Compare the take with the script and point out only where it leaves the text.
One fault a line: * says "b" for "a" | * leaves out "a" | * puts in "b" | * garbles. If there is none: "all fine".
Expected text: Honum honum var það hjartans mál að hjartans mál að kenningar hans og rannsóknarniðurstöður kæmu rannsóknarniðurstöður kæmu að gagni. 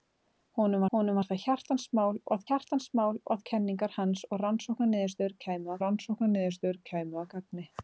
all fine